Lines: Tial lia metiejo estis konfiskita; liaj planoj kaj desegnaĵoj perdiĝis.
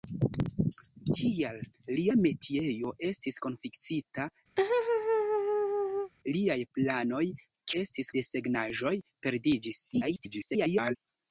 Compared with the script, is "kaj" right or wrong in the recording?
wrong